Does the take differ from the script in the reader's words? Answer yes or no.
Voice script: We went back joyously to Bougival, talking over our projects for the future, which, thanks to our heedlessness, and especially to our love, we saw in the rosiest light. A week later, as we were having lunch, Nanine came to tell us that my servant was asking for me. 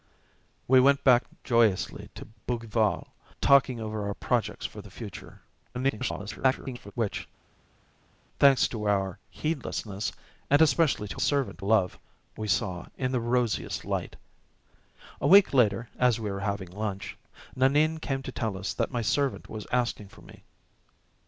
yes